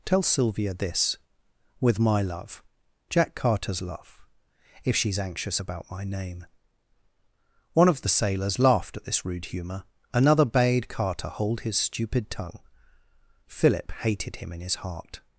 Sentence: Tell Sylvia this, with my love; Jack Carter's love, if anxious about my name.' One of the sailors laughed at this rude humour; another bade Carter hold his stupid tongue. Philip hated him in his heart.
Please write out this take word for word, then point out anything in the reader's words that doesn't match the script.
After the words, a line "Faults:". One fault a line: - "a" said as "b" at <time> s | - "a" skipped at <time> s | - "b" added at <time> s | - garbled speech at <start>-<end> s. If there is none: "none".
Tell Sylvia this, with my love; Jack Carter's love, if she's anxious about my name.' One of the sailors laughed at this rude humour; another bade Carter hold his stupid tongue. Philip hated him in his heart.
Faults:
- "she's" added at 5.0 s